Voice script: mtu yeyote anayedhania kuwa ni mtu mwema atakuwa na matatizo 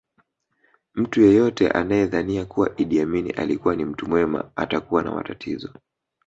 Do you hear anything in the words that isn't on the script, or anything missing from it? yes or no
yes